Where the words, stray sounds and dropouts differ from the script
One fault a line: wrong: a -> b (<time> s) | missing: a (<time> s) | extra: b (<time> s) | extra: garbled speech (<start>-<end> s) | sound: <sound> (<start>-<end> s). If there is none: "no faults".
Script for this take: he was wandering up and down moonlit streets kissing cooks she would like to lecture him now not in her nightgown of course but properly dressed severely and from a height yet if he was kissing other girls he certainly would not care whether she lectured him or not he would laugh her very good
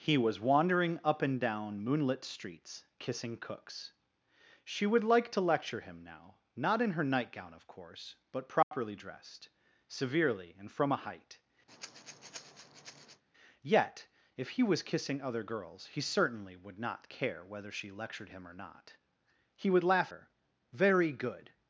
sound: dropout (8.6-8.7 s)
sound: breath (11.7-13.2 s)